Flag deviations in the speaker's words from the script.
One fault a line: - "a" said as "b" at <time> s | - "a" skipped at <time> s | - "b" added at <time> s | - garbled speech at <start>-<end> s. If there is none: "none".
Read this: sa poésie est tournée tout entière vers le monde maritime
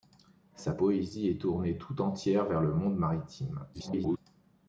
- garbled speech at 3.7-4.2 s